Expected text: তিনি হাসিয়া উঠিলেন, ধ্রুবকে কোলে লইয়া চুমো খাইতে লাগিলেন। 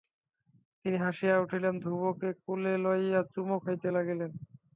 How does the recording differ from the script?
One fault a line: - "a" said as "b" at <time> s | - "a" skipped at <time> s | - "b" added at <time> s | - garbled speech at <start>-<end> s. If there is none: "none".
none